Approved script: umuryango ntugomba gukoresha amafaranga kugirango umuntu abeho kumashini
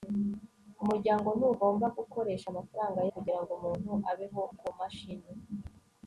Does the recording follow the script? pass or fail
pass